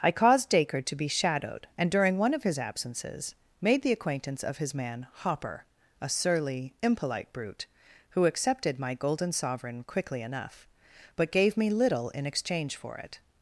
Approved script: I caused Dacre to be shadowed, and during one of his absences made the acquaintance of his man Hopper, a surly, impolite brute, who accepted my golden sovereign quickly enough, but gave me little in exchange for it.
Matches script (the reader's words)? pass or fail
pass